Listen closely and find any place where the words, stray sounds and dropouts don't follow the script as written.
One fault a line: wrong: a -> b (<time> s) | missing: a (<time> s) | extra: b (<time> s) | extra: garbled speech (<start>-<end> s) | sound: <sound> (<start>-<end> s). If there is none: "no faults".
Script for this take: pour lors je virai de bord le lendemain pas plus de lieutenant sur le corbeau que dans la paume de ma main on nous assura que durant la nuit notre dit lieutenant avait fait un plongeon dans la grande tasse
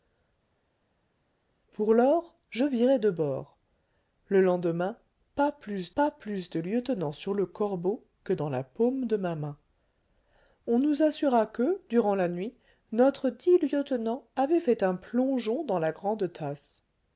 extra: pas plus (6.0 s)